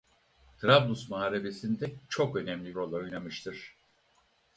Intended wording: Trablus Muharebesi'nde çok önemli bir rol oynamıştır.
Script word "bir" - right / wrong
wrong